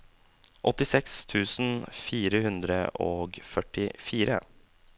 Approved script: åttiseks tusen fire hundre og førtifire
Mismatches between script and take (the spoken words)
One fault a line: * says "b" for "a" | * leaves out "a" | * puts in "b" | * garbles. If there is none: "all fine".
all fine